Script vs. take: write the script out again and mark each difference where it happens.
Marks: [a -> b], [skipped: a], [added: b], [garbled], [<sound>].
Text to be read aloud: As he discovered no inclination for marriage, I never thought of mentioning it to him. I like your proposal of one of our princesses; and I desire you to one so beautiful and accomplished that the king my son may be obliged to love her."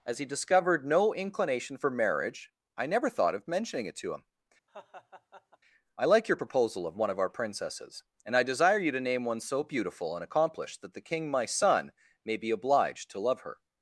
As he discovered no inclination for marriage, I never thought of mentioning it to him. [laugh] I like your proposal of one of our princesses; and I desire you to [added: name] one so beautiful and accomplished that the king my son may be obliged to love her."